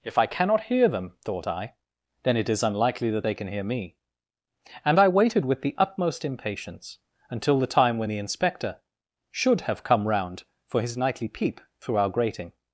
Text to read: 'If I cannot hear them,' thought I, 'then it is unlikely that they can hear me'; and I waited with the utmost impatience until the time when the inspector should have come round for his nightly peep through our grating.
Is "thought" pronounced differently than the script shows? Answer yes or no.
no